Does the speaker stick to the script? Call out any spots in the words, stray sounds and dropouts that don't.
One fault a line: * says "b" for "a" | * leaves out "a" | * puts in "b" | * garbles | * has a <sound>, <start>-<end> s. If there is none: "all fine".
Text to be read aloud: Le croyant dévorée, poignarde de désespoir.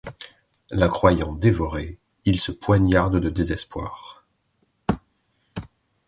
* says "La" for "Le"
* puts in "il se"